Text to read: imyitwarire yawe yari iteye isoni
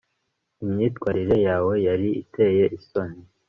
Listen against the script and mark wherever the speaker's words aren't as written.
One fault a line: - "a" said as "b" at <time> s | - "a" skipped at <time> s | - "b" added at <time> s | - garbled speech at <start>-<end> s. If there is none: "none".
none